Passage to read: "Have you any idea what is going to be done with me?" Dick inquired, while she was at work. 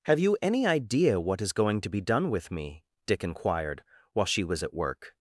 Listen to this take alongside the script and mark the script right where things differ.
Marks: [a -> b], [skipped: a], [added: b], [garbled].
"Have you any idea what is going to be done with me?" Dick inquired, while she was at work.